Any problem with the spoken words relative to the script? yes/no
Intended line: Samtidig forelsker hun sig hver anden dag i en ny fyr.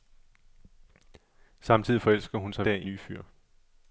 yes